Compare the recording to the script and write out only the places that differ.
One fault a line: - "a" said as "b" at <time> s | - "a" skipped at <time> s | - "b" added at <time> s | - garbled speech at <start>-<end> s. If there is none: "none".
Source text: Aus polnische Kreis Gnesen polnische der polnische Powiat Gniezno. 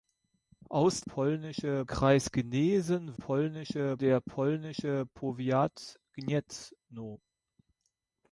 none